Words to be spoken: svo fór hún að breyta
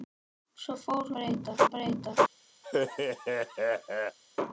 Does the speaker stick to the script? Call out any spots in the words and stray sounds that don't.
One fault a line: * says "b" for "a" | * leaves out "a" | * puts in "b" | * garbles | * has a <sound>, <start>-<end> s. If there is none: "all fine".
* says "breyta" for "hún"
* has a laugh, 2.6-4.2 s